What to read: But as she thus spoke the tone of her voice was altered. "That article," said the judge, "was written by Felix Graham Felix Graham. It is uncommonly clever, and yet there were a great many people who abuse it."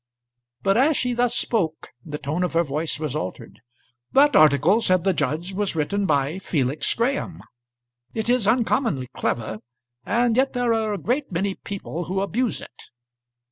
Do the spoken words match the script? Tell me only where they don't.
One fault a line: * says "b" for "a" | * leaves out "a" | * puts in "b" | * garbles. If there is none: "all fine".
* leaves out "Felix Graham"
* says "are" for "were"